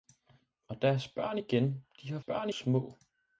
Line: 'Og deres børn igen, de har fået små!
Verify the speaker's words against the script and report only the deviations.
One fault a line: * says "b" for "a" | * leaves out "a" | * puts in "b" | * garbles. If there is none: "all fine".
* says "børn" for "fået"